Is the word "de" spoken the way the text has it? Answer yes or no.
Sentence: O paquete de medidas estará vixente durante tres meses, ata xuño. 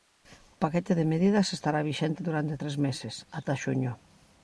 yes